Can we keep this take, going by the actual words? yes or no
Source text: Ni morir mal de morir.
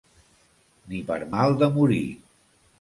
no